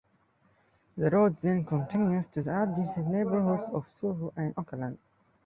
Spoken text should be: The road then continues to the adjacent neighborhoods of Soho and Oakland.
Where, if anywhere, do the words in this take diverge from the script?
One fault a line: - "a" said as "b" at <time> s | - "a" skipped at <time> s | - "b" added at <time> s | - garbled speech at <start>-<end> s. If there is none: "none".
none